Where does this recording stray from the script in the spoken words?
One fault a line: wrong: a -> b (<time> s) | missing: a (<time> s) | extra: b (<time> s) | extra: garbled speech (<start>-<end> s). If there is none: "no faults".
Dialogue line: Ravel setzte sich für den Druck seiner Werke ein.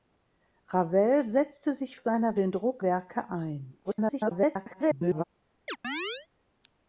wrong: für -> seiner (2.0 s)
missing: seiner (2.8 s)
extra: garbled speech (3.8-5.2 s)